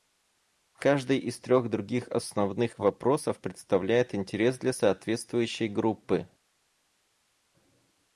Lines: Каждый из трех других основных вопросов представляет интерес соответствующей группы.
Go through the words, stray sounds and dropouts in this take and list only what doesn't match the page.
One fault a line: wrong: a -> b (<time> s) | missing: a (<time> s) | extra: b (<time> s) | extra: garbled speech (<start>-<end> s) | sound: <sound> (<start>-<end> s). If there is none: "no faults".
extra: для (4.6 s)